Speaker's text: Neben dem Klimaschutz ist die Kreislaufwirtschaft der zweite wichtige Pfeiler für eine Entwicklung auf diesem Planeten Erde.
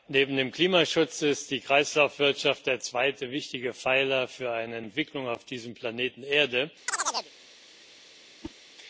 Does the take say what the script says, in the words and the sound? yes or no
no